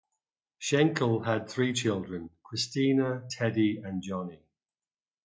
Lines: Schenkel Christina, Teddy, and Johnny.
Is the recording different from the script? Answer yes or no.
yes